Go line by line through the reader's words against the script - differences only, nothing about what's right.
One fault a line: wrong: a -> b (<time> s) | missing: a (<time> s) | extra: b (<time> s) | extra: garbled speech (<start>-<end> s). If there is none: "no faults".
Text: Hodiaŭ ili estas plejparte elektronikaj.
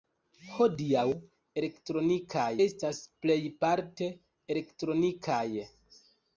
wrong: ili -> elektronikaj (1.6 s)